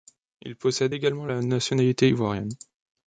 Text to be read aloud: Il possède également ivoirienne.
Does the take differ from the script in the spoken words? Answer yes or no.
yes